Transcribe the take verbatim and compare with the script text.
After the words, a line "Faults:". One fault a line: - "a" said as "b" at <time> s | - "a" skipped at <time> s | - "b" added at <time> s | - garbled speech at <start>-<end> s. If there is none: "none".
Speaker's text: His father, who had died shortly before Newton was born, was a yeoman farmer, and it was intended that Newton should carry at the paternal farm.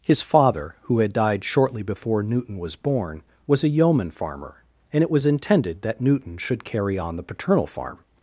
His father, who had died shortly before Newton was born, was a yeoman farmer, and it was intended that Newton should carry on the paternal farm.
Faults:
- "at" said as "on" at 7.0 s